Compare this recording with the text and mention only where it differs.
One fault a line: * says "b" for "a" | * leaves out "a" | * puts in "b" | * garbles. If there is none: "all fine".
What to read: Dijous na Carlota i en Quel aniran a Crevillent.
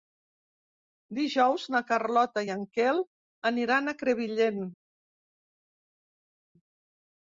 all fine